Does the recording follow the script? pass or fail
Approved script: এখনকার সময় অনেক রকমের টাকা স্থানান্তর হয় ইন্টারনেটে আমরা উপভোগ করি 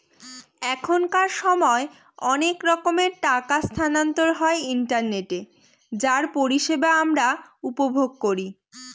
fail